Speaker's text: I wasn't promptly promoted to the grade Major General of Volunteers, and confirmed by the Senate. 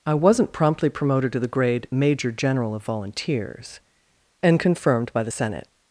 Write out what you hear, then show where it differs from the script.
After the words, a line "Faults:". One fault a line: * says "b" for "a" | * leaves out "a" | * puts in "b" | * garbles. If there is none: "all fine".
I wasn't promptly promoted to the grade Major General of Volunteers, and confirmed by the Senate.
Faults:
all fine